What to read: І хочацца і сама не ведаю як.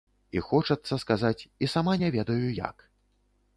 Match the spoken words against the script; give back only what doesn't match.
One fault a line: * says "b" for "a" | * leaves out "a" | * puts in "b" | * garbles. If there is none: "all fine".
* puts in "сказаць"